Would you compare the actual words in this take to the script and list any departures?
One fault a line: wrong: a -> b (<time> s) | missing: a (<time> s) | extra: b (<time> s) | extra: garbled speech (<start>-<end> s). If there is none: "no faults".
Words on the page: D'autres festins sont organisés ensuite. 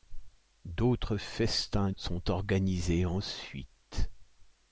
no faults